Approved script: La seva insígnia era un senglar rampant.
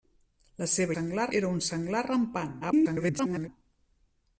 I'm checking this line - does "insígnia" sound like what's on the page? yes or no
no